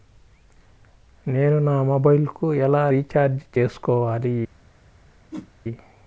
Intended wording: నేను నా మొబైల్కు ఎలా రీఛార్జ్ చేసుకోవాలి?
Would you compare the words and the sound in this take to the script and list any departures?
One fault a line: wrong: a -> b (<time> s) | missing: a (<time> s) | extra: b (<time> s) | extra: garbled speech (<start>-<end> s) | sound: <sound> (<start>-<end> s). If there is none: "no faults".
sound: whoosh (5.3-5.5 s)